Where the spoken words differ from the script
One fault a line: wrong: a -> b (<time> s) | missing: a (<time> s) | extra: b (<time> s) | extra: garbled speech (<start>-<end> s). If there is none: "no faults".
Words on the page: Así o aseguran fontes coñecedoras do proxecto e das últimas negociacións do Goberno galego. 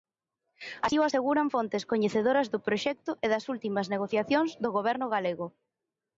no faults